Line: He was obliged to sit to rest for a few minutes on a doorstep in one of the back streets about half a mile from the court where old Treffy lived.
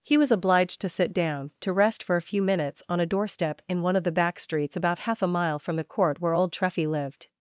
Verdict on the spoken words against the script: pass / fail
fail